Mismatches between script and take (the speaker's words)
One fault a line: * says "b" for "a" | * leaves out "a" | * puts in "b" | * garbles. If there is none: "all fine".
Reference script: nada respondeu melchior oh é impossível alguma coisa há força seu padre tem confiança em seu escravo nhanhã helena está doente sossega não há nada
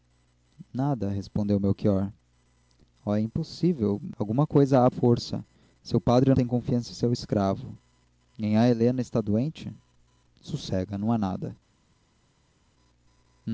all fine